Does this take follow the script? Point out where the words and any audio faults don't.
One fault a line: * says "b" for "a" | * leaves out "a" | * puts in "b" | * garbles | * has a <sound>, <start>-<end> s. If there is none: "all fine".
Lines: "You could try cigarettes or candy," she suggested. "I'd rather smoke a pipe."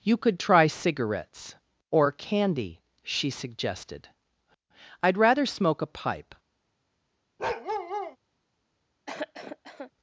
* has a bark, 7.4-8.2 s
* has a cough, 9.1-9.9 s